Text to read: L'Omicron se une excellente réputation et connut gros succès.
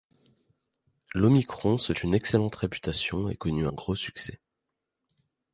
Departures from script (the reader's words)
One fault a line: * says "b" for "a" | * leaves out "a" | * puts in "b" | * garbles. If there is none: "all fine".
all fine